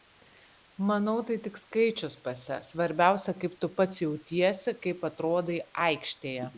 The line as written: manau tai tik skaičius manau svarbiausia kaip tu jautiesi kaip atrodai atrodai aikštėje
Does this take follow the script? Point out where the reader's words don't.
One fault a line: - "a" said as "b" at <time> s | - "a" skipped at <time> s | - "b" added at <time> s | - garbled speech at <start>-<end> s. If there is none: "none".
- "manau" said as "pase" at 2.2 s
- "pats" added at 3.8 s
- "atrodai" skipped at 5.6 s